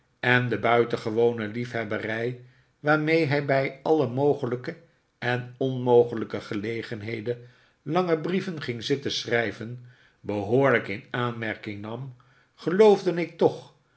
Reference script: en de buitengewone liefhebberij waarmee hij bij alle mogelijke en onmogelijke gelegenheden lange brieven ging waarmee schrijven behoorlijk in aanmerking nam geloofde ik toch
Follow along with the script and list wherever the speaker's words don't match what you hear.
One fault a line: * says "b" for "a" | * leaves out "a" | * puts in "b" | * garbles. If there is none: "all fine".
* says "zitten" for "waarmee"